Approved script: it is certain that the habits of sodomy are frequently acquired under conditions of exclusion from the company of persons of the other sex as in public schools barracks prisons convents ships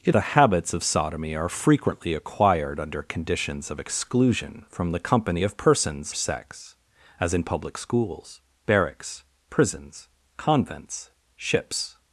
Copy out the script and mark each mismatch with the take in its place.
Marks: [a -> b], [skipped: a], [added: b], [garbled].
it [skipped: is certain that] the habits of sodomy are frequently acquired under conditions of exclusion from the company of persons [skipped: of the other] sex as in public schools barracks prisons convents ships